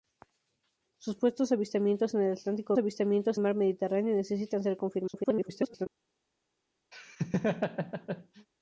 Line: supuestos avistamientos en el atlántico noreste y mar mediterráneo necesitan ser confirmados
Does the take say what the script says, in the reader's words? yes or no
no